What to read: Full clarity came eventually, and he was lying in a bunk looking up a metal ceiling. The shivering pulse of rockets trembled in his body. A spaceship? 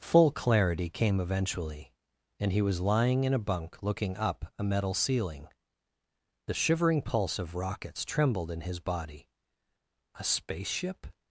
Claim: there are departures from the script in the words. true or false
false